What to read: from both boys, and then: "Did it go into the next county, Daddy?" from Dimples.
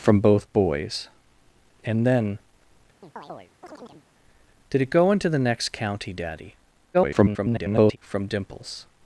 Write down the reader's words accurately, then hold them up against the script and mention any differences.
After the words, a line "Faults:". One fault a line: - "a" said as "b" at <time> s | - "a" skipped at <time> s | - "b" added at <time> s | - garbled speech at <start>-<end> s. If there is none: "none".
from both boys, and then: "Did it go into the next county, Daddy?" [garbled] from Dimples.
Faults:
- garbled speech at 6.9-8.0 s